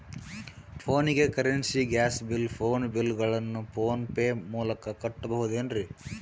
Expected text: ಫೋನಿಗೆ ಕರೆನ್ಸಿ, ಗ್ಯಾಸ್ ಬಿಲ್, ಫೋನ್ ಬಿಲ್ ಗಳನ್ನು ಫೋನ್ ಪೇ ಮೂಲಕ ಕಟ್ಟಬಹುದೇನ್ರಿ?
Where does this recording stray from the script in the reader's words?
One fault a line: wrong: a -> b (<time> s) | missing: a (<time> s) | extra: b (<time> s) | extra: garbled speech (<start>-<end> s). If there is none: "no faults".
no faults